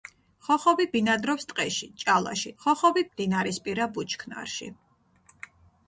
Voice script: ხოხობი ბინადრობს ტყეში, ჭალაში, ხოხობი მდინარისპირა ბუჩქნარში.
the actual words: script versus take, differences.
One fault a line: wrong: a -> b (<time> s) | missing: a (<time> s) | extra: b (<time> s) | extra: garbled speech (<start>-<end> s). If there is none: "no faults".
no faults